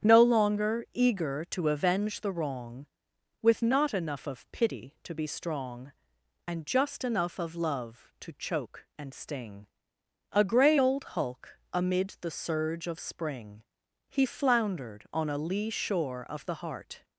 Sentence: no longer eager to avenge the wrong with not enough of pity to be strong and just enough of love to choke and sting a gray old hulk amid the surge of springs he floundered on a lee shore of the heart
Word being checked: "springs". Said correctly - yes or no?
no